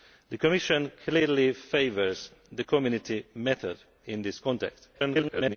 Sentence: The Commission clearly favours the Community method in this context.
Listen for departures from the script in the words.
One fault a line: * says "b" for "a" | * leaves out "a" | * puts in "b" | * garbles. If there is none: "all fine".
* garbles